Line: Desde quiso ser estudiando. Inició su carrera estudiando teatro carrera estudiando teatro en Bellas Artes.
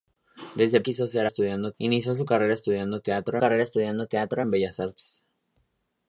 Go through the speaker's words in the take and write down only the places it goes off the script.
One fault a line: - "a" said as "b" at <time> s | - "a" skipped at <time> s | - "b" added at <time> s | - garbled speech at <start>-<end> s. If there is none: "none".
none